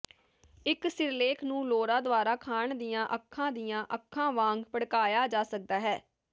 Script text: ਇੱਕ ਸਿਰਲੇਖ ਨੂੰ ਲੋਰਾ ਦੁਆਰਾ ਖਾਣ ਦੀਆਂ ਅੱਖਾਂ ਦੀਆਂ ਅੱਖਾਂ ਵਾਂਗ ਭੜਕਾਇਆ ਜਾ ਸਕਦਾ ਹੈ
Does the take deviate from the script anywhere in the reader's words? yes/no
no